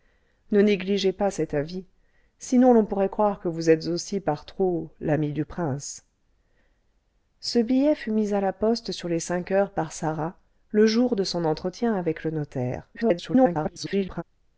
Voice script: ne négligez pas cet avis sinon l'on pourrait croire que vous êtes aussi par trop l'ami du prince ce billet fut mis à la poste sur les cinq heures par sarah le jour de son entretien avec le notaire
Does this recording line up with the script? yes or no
no